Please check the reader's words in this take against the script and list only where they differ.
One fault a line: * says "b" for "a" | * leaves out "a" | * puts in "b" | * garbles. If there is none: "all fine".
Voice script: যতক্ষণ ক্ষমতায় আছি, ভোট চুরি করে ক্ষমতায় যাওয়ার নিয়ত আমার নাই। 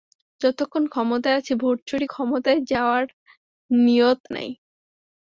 * leaves out "করে"
* leaves out "আমার"